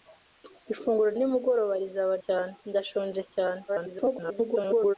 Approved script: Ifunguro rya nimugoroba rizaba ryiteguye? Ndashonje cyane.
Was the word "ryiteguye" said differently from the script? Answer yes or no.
yes